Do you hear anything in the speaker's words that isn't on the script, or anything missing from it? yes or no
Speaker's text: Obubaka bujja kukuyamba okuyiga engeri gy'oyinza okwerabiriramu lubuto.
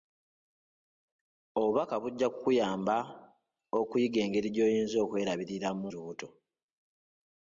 no